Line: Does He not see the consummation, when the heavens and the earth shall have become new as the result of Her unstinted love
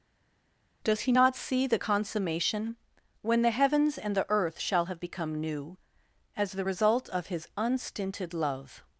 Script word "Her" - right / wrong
wrong